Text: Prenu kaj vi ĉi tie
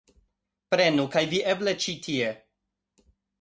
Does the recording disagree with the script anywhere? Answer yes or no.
yes